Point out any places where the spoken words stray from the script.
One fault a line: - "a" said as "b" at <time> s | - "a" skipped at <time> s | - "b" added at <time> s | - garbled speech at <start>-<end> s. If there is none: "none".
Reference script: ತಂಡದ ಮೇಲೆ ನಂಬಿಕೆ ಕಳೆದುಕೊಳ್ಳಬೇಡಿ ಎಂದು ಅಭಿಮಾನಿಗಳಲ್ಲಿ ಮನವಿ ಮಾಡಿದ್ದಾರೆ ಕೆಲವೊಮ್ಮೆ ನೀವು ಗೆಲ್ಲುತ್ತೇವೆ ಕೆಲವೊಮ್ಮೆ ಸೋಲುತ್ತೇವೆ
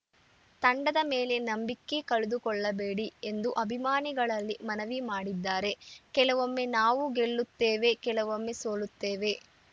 - "ನೀವು" said as "ನಾವು" at 6.8 s